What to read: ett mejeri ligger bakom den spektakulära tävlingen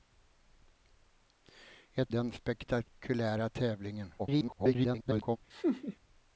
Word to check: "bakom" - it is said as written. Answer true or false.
false